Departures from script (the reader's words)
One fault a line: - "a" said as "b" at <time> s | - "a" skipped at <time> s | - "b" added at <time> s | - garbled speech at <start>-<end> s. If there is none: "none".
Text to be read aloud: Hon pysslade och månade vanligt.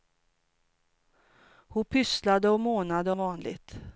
none